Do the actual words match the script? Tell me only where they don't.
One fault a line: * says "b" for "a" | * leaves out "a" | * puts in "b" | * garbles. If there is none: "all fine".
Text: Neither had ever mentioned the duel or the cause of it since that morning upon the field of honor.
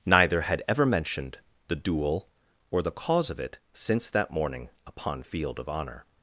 * leaves out "the"